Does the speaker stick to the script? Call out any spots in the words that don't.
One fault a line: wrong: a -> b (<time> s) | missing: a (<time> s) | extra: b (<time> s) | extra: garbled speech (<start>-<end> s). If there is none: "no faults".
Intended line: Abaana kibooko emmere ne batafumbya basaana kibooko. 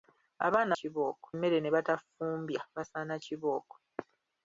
no faults